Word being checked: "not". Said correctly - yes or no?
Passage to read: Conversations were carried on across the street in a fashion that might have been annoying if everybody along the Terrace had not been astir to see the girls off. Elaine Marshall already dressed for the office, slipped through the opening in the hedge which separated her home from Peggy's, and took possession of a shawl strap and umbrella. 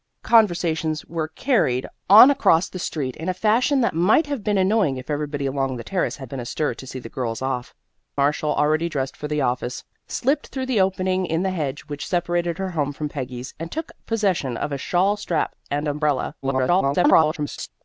no